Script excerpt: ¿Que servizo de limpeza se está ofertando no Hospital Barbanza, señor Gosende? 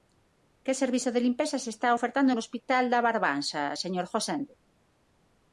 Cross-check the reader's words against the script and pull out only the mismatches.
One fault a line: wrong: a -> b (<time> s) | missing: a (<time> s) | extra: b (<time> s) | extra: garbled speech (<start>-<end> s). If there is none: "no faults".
extra: da (2.9 s)